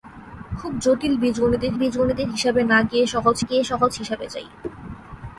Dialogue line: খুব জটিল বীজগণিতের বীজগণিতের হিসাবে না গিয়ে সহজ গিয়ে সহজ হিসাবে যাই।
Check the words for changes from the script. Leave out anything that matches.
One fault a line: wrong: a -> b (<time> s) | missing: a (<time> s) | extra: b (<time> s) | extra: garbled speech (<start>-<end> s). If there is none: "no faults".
no faults